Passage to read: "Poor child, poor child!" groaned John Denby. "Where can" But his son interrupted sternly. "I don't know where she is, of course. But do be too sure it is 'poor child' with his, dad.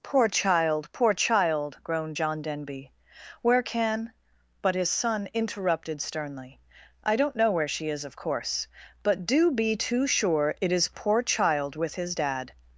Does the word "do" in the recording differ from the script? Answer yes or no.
no